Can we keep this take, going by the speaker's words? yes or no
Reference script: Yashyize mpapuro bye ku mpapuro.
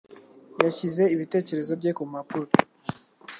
no